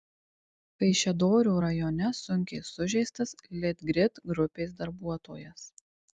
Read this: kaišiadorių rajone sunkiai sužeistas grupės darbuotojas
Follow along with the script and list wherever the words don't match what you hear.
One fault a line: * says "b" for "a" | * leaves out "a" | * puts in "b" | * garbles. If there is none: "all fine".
* puts in "litgrid"